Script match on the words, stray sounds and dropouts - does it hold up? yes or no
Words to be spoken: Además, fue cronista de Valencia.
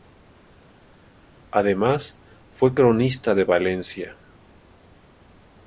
yes